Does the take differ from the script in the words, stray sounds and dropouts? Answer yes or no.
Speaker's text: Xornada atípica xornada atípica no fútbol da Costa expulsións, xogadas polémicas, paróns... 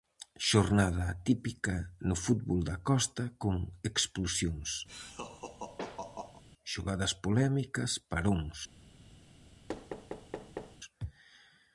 yes